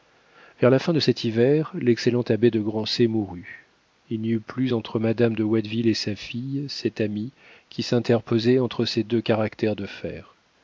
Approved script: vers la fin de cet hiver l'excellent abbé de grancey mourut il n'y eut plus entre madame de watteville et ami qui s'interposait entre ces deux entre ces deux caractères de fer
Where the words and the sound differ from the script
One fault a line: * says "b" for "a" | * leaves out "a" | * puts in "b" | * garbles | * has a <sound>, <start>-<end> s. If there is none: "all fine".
* puts in "sa fille cet"
* leaves out "entre ces deux"